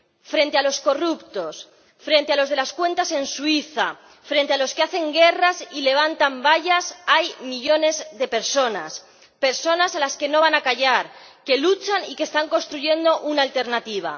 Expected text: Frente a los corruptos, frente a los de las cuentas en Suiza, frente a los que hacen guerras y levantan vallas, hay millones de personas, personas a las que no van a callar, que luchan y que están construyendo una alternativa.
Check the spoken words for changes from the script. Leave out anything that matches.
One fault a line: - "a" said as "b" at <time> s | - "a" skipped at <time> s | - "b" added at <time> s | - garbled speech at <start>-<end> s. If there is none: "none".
none